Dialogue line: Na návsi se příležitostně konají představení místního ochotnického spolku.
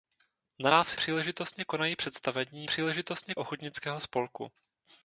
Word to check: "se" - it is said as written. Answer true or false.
false